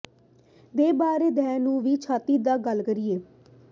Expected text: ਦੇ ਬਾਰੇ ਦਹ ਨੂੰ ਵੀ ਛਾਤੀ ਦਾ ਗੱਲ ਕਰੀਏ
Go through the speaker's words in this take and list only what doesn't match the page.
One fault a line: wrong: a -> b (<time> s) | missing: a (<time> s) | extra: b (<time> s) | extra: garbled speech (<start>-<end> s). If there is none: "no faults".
no faults